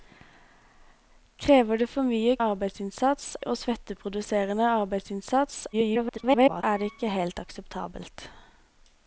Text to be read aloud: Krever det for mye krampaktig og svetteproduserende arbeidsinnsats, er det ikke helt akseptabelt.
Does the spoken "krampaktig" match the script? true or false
false